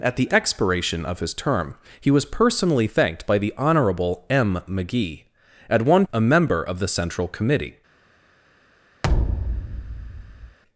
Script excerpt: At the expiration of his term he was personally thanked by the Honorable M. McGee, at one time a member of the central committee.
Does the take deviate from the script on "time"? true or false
true